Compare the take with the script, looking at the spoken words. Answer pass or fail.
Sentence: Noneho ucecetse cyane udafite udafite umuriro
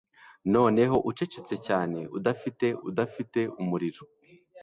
pass